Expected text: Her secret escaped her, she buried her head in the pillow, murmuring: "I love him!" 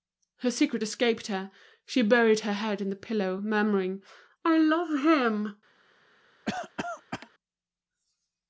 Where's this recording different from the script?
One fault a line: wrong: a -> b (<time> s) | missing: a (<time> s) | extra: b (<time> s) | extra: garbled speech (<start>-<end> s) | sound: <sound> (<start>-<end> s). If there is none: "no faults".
sound: cough (6.5-7.3 s)